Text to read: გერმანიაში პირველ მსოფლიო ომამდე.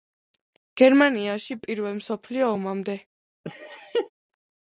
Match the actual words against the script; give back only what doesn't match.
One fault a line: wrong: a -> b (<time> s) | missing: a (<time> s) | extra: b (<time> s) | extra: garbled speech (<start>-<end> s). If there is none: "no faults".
no faults